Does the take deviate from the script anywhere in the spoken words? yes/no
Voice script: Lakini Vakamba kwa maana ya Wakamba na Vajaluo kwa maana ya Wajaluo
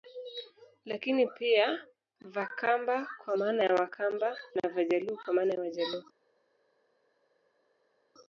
yes